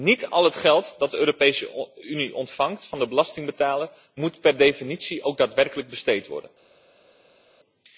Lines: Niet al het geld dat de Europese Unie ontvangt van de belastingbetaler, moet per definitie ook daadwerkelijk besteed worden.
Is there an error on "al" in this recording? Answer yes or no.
no